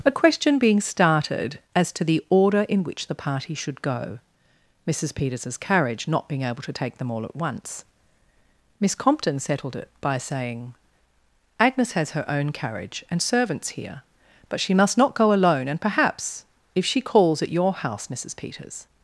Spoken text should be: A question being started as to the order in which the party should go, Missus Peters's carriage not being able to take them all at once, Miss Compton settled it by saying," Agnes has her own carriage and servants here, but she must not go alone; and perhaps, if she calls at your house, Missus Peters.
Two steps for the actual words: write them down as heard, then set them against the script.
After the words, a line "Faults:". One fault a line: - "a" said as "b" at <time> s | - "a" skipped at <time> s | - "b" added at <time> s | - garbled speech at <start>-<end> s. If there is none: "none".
A question being started as to the order in which the party should go, Missus Peters's carriage not being able to take them all at once, Miss Compton settled it by saying," Agnes has her own carriage and servants here, but she must not go alone; and perhaps, if she calls at your house, Missus Peters.
Faults:
none